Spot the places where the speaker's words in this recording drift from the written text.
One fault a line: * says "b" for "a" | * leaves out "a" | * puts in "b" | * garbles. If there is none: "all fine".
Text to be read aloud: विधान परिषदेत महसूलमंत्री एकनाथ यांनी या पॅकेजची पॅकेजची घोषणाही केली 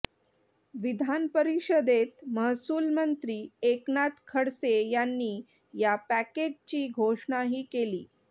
* puts in "खडसे"
* leaves out "पॅकेजची"